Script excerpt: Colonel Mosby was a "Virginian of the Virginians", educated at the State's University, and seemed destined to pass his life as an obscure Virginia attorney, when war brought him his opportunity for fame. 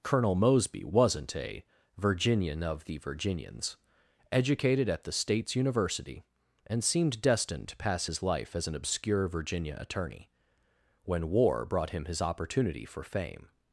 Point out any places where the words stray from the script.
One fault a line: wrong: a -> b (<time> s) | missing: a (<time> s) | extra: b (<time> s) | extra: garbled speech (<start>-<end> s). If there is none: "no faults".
wrong: was -> wasn't (0.8 s)